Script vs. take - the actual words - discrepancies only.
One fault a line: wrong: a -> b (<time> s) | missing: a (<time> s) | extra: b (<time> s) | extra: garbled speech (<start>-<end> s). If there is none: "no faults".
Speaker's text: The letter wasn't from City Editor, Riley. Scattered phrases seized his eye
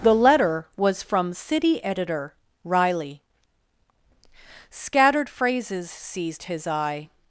wrong: wasn't -> was (0.8 s)